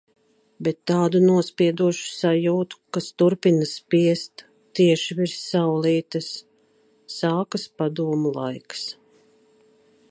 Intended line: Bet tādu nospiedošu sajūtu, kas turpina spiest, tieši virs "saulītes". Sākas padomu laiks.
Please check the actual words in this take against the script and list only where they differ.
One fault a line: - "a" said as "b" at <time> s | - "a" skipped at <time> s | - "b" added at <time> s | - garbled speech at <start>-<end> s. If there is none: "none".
none